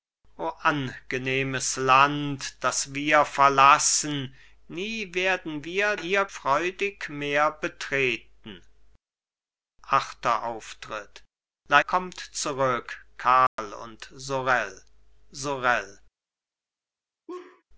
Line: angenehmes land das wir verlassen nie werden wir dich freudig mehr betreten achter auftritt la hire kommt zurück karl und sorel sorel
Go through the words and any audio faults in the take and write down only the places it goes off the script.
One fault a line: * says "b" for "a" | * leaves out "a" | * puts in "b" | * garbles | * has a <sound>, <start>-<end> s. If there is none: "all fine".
* says "hire" for "dich"
* leaves out "hire"
* has a dropout, 13.5-13.6 s
* has a laugh, 17.3-17.6 s